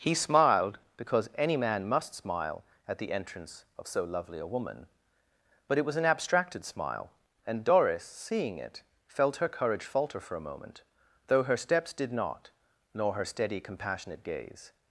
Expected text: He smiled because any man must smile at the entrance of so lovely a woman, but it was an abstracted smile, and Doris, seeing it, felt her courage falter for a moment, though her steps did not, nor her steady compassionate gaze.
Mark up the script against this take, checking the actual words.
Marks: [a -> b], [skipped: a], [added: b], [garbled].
He smiled because any man must smile at the entrance of so lovely a woman, but it was an abstracted smile, and Doris, seeing it, felt her courage falter for a moment, though her steps did not, nor her steady compassionate gaze.